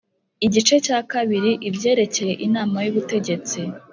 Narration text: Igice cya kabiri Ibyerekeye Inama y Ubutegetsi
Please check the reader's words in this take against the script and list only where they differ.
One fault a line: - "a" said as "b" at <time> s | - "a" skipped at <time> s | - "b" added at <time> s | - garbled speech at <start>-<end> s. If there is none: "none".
none